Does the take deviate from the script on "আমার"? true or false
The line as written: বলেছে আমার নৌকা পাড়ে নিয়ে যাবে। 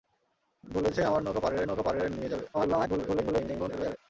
false